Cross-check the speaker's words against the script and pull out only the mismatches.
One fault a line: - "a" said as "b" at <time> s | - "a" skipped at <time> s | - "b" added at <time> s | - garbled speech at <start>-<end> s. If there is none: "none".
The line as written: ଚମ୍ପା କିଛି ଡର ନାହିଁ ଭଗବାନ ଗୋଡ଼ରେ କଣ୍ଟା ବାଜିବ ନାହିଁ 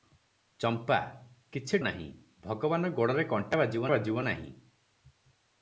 - "ଡର" skipped at 1.8 s
- "ବାଜିବ" added at 3.9 s